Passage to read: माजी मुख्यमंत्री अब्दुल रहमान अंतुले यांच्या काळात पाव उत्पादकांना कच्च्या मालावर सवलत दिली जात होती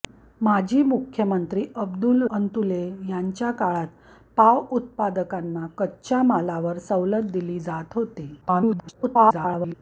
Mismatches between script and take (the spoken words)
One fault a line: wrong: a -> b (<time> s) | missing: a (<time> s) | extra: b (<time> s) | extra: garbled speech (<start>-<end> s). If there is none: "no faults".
missing: रहमान (2.2 s)
extra: garbled speech (8.4-9.7 s)